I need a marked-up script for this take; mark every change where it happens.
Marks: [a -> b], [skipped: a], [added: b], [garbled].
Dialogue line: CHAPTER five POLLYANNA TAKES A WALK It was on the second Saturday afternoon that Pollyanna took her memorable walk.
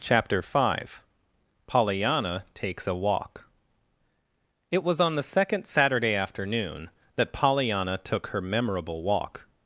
CHAPTER five POLLYANNA TAKES A WALK It was on the second Saturday afternoon that Pollyanna took her memorable walk.